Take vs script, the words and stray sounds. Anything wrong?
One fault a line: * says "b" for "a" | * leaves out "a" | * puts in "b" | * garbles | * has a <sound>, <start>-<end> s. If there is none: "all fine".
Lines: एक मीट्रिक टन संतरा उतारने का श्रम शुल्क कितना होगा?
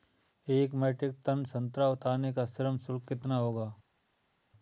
all fine